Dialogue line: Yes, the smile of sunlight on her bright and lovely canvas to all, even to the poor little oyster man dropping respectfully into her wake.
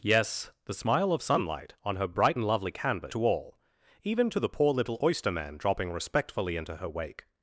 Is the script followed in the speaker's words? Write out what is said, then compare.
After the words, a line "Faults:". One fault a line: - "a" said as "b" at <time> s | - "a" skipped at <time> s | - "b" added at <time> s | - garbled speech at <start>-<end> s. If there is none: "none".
Yes, the smile of sunlight on her bright and lovely canvas to all, even to the poor little oyster man dropping respectfully into her wake.
Faults:
none